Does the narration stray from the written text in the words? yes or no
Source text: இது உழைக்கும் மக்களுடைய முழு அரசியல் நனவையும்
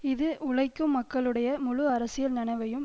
no